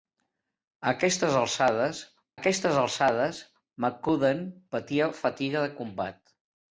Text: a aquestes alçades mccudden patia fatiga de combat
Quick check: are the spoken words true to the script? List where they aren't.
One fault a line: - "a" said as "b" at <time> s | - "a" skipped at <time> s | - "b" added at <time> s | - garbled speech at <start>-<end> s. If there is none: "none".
- "aquestes alçades" added at 2.3 s